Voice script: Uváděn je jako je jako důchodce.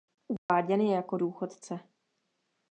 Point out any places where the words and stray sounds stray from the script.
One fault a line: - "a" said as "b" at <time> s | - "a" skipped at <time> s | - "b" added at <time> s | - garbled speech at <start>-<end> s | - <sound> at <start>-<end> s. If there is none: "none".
- dropout at 0.4-0.5 s
- "je jako" skipped at 1.2 s